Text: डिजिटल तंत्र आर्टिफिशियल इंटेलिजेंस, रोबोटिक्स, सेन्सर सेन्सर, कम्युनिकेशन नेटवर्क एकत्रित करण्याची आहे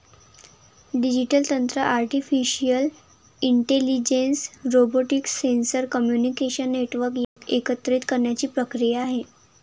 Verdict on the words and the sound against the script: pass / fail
fail